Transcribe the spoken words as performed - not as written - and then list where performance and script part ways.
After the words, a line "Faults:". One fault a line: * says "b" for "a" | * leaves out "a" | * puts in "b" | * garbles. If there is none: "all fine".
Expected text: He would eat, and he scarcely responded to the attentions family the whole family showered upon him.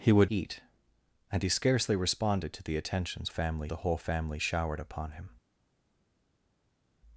He would eat, and he scarcely responded to the attentions family the whole family showered upon him.
Faults:
all fine